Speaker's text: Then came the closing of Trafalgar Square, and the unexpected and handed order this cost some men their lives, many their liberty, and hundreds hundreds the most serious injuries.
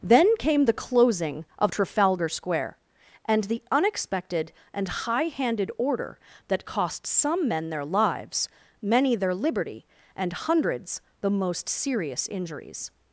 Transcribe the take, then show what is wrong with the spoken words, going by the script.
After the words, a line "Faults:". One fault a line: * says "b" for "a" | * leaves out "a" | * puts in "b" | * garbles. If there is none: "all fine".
Then came the closing of Trafalgar Square, and the unexpected and high handed order that cost some men their lives, many their liberty, and hundreds the most serious injuries.
Faults:
* puts in "high"
* says "that" for "this"
* leaves out "hundreds"